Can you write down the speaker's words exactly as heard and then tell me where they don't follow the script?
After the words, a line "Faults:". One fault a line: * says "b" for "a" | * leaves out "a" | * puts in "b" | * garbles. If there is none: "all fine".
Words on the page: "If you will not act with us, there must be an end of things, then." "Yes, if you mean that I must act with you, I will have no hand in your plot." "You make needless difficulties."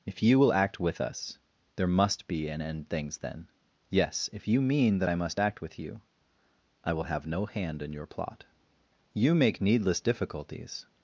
"If you will act with us, there must be an end things, then." "Yes, if you mean that I must act with you, I will have no hand in your plot." "You make needless difficulties."
Faults:
* leaves out "not"
* leaves out "of"